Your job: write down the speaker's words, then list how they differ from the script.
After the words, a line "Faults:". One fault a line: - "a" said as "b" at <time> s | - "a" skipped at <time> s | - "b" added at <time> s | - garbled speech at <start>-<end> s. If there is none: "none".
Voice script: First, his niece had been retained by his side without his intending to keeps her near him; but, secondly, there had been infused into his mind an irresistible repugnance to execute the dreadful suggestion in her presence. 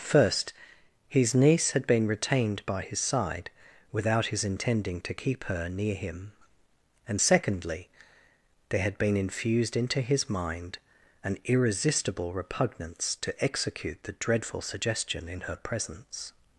First, his niece had been retained by his side without his intending to keep her near him; and, secondly, there had been infused into his mind an irresistible repugnance to execute the dreadful suggestion in her presence.
Faults:
- "keeps" said as "keep" at 5.1 s
- "but" said as "and" at 7.1 s